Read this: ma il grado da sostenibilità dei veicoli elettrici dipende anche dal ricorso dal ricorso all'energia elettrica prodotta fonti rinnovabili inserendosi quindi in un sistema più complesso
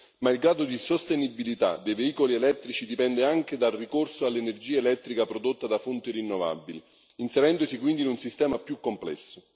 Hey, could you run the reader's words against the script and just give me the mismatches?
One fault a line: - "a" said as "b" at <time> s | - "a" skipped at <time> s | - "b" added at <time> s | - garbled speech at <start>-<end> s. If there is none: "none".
- "da" said as "di" at 0.7 s
- "dal ricorso" skipped at 4.2 s
- "da" added at 5.7 s